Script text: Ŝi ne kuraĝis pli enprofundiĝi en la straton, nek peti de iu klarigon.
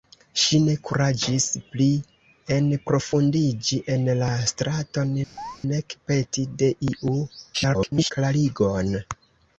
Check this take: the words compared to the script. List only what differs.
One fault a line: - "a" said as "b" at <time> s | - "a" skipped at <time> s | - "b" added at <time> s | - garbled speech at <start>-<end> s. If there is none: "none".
- garbled speech at 7.5-8.1 s